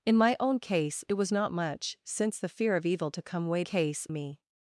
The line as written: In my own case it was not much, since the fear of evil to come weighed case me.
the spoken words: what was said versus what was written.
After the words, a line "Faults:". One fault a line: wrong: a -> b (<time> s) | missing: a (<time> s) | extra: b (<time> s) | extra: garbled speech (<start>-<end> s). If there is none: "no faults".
In my own case it was not much, since the fear of evil to come weighed case me.
Faults:
no faults